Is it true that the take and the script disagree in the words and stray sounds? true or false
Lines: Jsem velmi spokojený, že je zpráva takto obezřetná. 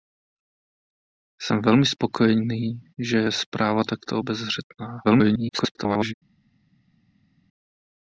true